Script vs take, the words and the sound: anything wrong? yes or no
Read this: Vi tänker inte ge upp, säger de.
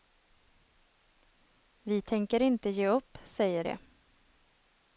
no